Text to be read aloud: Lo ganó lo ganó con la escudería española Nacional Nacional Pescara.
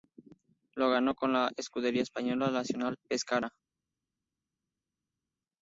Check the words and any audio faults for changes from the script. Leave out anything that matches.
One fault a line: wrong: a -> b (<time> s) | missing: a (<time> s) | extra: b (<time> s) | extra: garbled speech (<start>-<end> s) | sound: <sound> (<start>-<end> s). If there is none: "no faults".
missing: lo ganó (1.1 s)
missing: Nacional (3.0 s)